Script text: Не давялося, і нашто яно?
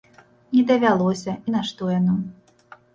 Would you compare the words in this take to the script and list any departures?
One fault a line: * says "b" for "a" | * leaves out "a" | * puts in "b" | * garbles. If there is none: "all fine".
all fine